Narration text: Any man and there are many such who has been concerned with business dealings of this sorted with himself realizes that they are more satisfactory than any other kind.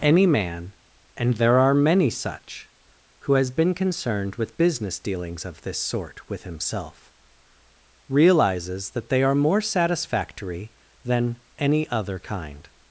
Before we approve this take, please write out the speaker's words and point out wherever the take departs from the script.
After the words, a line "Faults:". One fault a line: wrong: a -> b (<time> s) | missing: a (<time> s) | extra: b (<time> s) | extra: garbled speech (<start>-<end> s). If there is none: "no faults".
Any man and there are many such who has been concerned with business dealings of this sort with himself realizes that they are more satisfactory than any other kind.
Faults:
wrong: sorted -> sort (5.8 s)